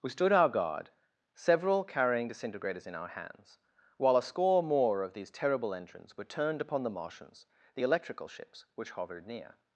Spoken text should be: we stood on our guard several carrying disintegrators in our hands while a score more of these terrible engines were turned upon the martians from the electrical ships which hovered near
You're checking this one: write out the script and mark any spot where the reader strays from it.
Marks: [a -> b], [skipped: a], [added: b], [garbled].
we stood [skipped: on] our guard several carrying disintegrators in our hands while a score more of these terrible engines were turned upon the martians [skipped: from] the electrical ships which hovered near